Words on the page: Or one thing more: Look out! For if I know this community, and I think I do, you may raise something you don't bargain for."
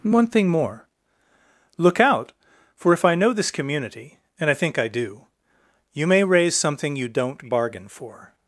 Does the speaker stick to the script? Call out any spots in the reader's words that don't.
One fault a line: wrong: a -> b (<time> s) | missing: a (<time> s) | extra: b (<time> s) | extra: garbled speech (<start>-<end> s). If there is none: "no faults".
wrong: Or -> And (0.0 s)